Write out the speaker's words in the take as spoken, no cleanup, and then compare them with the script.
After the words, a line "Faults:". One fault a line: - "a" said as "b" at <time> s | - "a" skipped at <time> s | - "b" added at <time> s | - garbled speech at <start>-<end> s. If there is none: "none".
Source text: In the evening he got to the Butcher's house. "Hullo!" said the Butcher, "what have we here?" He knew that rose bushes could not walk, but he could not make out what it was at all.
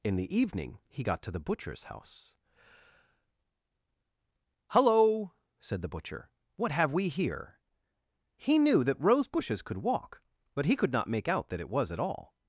In the evening he got to the Butcher's house. "Hullo!" said the Butcher, "what have we here?" He knew that rose bushes could walk, but he could not make out that it was at all.
Faults:
- "not" skipped at 9.8 s
- "what" said as "that" at 11.5 s